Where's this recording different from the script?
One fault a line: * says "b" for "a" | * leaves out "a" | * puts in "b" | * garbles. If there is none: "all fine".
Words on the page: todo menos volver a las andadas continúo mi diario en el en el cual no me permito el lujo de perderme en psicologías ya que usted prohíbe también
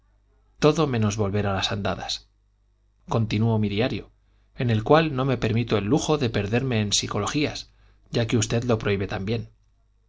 * leaves out "en el"
* puts in "lo"